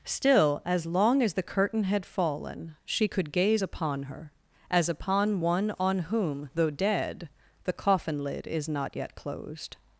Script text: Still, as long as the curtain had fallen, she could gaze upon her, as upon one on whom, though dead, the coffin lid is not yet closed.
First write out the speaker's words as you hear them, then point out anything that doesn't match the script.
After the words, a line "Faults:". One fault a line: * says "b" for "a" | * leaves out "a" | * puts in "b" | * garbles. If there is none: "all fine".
Still, as long as the curtain had fallen, she could gaze upon her, as upon one on whom, though dead, the coffin lid is not yet closed.
Faults:
all fine